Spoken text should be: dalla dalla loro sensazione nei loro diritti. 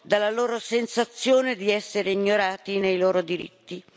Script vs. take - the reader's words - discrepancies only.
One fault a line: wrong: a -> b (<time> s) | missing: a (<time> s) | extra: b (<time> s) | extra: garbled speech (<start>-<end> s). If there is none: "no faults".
missing: dalla (0.3 s)
extra: di essere ignorati (1.6 s)